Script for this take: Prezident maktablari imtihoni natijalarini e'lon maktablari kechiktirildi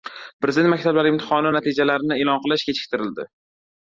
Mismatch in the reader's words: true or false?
true